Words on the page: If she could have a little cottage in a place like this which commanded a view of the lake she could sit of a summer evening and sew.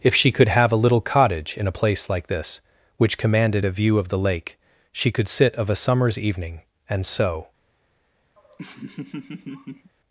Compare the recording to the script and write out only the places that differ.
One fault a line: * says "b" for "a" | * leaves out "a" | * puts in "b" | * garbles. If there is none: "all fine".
* says "summers" for "summer"